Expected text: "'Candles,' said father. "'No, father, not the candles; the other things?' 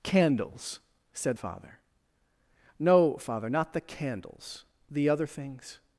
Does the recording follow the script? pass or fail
pass